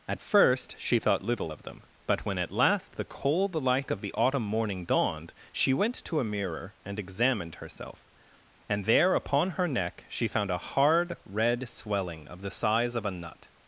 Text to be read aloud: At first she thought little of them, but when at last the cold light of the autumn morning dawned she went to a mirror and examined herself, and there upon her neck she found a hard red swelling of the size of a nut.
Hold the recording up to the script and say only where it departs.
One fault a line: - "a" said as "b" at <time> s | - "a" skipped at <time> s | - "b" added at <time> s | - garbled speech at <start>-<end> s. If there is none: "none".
none